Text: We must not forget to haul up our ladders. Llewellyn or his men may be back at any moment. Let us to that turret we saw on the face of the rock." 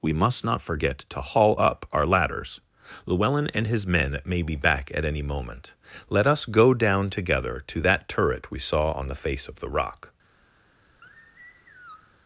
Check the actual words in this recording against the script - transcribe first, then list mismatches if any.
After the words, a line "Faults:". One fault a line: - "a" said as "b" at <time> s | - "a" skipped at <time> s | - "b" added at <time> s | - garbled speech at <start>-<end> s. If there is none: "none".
We must not forget to haul up our ladders. Llewellyn and his men may be back at any moment. Let us go down together to that turret we saw on the face of the rock."
Faults:
- "or" said as "and" at 3.5 s
- "go down together" added at 6.4 s